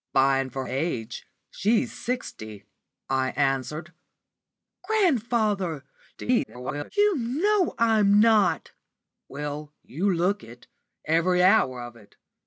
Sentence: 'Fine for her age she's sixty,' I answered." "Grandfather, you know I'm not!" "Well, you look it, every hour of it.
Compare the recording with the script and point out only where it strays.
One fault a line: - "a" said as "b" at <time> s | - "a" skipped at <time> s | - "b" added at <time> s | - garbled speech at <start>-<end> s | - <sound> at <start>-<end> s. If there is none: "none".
- "her" skipped at 0.7 s
- garbled speech at 6.1-6.9 s